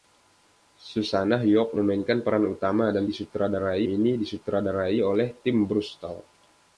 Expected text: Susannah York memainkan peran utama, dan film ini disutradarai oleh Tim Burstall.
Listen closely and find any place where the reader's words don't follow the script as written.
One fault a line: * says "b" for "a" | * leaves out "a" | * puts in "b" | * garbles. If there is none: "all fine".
* says "disutradarai" for "film"